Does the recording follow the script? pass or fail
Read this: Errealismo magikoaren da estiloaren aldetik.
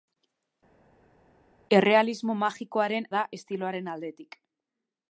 pass